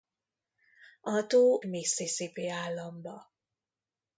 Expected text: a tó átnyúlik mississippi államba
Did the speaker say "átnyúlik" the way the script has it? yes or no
no